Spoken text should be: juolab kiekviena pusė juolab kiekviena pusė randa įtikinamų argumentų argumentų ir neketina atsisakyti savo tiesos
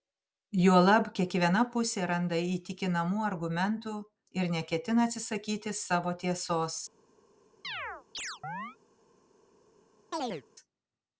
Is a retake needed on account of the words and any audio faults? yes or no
yes